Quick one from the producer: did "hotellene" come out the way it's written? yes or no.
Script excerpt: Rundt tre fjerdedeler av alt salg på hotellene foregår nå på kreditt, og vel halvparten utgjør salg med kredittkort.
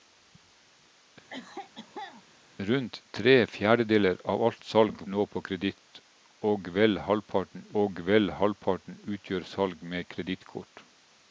no